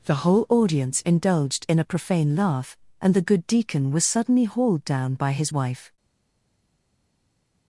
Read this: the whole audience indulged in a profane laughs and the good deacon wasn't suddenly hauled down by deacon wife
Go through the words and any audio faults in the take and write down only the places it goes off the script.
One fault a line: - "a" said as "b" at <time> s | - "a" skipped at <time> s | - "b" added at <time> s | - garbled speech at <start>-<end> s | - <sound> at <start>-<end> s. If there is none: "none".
- "laughs" said as "laugh" at 2.4 s
- "wasn't" said as "was" at 3.9 s
- "deacon" said as "his" at 5.3 s